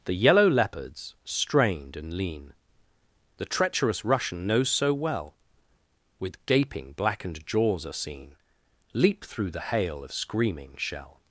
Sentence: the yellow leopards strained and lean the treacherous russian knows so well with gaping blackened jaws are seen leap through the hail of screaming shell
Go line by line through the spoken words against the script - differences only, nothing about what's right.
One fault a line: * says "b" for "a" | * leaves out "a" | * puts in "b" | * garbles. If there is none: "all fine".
all fine